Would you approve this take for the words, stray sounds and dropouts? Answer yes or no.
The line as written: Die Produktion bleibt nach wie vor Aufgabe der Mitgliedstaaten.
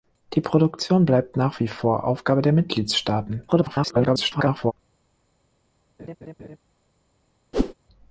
no